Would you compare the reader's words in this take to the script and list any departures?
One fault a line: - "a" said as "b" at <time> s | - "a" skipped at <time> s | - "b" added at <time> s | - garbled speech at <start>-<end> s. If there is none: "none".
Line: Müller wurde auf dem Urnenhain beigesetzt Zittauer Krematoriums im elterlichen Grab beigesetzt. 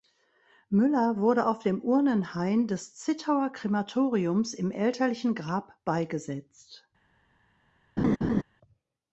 - "beigesetzt" said as "des" at 2.7 s